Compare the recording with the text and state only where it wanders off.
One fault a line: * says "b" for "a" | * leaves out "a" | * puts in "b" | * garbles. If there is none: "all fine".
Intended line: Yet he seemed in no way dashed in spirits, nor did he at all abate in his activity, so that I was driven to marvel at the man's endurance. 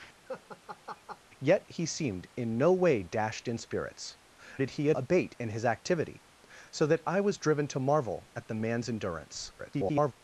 * leaves out "nor"
* leaves out "all"
* garbles